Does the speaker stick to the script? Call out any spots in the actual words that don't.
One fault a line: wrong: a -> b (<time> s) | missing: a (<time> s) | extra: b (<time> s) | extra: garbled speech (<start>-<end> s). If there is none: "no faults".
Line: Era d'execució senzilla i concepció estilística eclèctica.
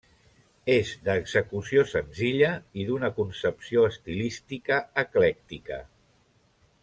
wrong: Era -> És (0.8 s)
extra: d'una (2.9 s)